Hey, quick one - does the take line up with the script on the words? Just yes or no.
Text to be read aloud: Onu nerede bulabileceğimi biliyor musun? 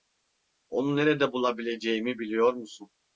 yes